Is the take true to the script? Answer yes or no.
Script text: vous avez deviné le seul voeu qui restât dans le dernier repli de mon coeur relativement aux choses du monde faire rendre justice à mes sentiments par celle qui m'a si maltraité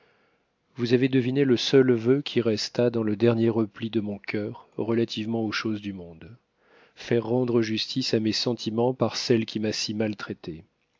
yes